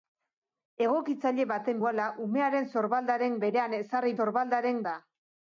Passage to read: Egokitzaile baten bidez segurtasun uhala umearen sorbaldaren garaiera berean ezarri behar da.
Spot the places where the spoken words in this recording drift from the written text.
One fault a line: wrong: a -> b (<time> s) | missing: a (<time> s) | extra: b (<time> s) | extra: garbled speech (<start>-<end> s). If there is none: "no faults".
missing: bidez segurtasun (1.8 s)
missing: garaiera (3.4 s)
wrong: behar -> sorbaldaren (4.2 s)